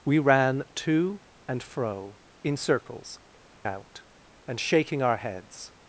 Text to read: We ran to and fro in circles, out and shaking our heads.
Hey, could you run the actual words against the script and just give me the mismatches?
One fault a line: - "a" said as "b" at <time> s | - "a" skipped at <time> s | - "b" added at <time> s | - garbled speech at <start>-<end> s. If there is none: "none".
none